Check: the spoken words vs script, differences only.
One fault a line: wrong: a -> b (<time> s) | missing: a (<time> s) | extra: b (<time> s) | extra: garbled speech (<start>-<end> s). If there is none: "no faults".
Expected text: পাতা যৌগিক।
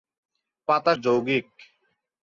no faults